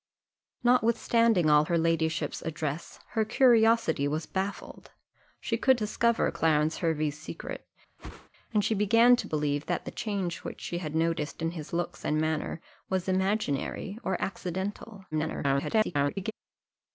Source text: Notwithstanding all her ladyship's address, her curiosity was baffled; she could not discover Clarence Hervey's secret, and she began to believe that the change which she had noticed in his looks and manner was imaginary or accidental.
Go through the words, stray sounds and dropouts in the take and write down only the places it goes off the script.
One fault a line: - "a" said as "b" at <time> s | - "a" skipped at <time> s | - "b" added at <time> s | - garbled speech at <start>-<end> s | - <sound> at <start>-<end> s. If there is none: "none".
- "not" skipped at 5.8 s
- whoosh at 8.0-8.3 s
- garbled speech at 15.1-16.3 s